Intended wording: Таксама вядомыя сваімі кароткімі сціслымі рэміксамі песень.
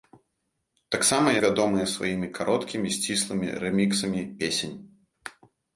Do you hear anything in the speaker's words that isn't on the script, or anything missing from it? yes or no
no